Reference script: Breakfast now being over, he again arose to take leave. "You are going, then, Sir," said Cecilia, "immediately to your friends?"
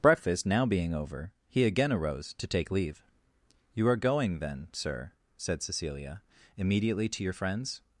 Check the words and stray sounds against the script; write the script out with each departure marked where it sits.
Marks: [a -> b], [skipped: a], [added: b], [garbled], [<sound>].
Breakfast now being over, he again arose to take leave. "You are going, then, Sir," said Cecilia, "immediately to your friends?"